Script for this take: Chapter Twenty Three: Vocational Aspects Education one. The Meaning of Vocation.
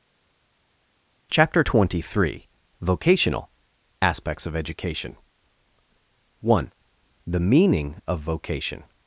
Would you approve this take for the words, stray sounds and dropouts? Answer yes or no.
no